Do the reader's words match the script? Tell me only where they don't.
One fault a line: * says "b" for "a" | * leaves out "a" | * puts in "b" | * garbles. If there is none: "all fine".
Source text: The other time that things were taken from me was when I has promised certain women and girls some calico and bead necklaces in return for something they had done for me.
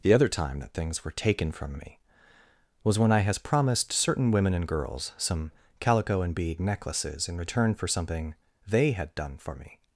all fine